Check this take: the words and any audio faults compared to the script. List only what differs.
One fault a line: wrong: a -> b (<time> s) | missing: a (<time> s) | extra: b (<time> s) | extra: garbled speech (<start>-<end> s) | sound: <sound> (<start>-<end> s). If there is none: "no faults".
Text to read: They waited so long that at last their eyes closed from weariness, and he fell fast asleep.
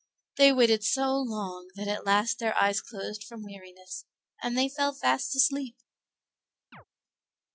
wrong: he -> they (4.6 s)
sound: chirp (6.7-6.8 s)